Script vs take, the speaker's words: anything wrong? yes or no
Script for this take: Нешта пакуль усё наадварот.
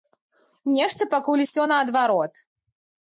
no